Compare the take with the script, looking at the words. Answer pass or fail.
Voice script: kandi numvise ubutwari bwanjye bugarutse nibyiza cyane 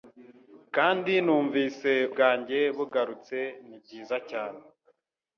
fail